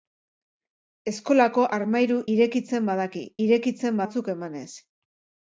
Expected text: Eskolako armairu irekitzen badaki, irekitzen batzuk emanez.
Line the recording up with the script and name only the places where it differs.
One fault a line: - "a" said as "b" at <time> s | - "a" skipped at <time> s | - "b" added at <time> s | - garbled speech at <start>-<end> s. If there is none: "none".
none